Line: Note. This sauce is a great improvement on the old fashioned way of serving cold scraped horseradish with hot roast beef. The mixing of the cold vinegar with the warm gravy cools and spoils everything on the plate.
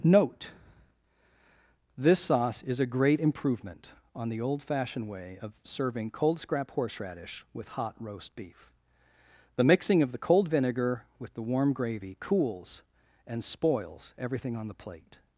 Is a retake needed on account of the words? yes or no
yes